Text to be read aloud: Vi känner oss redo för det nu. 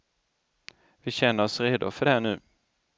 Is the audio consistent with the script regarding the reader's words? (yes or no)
yes